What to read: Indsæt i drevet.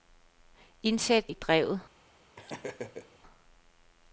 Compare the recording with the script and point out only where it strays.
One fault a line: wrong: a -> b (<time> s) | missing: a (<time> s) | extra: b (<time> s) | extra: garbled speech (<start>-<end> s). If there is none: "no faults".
no faults